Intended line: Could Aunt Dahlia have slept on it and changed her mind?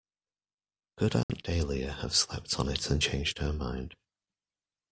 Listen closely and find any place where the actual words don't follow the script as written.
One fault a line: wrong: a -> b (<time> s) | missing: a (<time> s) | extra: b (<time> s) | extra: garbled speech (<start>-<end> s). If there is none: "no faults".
no faults